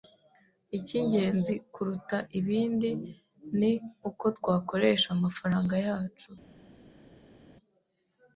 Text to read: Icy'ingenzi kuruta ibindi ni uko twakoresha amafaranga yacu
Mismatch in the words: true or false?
false